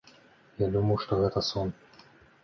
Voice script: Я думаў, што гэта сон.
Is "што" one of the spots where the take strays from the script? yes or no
no